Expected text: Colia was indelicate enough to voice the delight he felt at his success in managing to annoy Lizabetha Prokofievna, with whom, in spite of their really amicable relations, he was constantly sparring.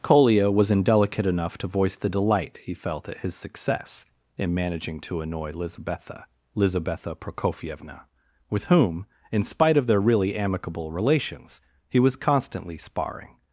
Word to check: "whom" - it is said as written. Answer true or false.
true